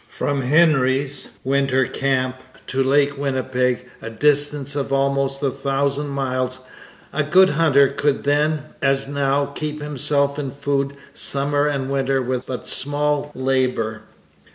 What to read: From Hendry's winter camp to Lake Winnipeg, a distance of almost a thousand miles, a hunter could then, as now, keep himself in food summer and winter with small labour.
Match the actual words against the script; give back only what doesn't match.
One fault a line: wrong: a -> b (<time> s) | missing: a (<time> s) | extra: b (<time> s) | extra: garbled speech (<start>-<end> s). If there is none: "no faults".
extra: good (7.2 s)
extra: but (12.5 s)